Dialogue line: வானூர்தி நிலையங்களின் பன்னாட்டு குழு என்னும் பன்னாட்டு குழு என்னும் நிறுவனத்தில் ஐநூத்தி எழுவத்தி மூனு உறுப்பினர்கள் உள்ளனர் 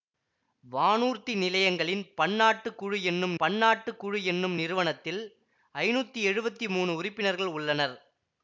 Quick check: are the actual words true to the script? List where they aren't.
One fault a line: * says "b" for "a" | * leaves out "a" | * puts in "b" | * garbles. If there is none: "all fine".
all fine